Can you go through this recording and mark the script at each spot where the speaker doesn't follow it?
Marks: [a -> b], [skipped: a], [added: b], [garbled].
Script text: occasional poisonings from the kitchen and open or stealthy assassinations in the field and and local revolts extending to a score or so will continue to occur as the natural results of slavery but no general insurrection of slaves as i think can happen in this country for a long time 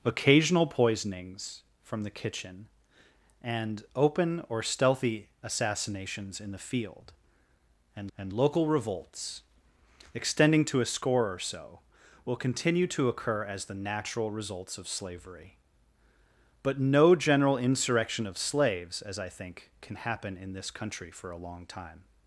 occasional poisonings from the kitchen and open or stealthy assassinations in the field and and local revolts extending to a score or so will continue to occur as the natural results of slavery but no general insurrection of slaves as i think can happen in this country for a long time